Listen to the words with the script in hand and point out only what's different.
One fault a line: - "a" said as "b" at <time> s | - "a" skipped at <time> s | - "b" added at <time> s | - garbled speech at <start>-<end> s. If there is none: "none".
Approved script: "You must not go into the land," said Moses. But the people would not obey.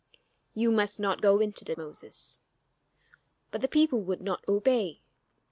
- "land said" skipped at 1.8 s